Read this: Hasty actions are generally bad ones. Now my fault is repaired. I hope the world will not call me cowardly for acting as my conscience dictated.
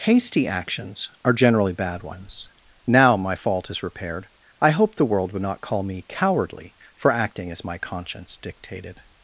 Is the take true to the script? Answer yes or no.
no